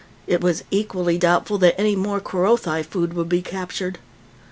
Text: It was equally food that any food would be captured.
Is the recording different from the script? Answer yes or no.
yes